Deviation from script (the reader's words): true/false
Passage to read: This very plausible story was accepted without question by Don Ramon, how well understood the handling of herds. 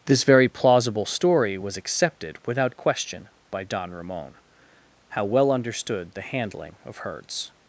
false